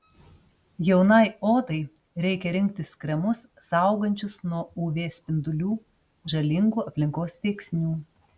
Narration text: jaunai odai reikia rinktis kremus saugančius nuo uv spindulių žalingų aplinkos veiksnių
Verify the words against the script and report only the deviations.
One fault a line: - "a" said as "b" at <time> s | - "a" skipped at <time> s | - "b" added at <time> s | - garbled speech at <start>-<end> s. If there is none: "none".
none